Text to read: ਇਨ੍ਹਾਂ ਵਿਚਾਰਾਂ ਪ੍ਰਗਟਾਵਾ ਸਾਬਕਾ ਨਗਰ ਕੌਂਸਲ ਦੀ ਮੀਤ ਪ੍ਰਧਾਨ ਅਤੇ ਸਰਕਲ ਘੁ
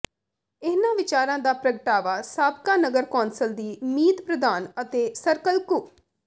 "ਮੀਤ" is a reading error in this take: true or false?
false